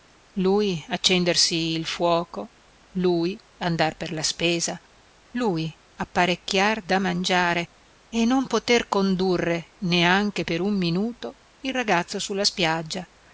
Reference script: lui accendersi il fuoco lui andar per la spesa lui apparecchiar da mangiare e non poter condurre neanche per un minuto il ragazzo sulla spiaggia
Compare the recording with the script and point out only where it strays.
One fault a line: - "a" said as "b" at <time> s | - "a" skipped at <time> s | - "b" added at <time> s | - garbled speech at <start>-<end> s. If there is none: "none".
none